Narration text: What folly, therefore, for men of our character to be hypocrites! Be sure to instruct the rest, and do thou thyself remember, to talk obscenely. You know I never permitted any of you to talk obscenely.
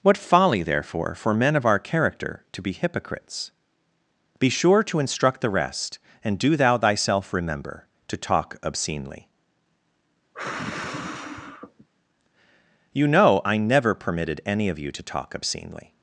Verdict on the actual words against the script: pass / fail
pass